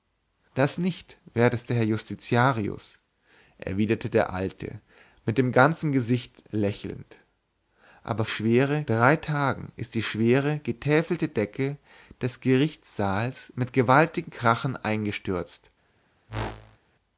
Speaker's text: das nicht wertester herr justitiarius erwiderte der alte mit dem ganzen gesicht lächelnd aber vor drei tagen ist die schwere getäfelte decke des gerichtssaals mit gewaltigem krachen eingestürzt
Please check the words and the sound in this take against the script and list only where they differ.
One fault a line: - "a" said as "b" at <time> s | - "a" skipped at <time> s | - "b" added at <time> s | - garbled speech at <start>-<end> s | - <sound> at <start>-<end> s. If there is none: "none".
- "vor" said as "schwere" at 8.3 s
- whoosh at 16.3-16.8 s